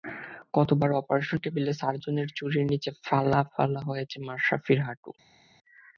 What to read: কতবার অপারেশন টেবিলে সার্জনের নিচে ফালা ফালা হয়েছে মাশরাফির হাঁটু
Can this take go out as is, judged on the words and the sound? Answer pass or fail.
fail